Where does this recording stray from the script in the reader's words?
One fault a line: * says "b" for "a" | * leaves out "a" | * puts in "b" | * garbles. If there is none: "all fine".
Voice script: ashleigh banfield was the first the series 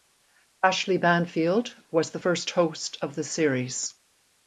* puts in "host of"